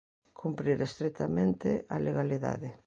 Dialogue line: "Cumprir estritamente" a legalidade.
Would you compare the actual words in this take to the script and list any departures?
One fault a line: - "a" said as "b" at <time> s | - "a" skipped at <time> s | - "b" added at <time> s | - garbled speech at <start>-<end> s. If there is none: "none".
none